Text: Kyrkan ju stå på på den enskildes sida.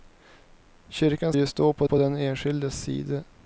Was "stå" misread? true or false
false